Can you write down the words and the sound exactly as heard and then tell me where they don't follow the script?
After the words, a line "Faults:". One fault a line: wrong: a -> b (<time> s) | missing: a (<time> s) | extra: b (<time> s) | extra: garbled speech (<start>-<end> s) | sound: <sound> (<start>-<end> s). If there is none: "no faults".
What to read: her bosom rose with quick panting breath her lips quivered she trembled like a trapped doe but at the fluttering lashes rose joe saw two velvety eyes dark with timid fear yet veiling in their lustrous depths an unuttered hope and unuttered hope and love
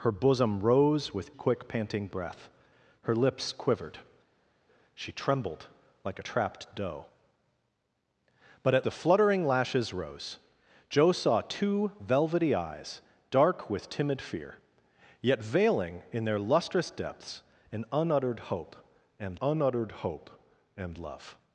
her bosom rose with quick panting breath her lips quivered she trembled like a trapped doe but at the fluttering lashes rose joe saw two velvety eyes dark with timid fear yet veiling in their lustrous depths an unuttered hope and unuttered hope and love
Faults:
no faults